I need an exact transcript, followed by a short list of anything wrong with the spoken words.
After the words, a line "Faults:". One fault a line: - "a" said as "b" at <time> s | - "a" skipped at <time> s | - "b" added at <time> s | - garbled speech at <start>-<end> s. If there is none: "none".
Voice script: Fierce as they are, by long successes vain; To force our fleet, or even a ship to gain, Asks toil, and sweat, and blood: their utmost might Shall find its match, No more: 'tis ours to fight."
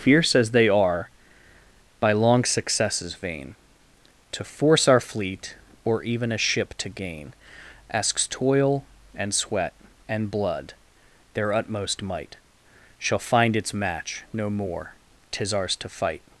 Fierce as they are, by long successes vain; To force our fleet, or even a ship to gain, Asks toil, and sweat, and blood: their utmost might Shall find its match, No more: 'tis ours to fight."
Faults:
none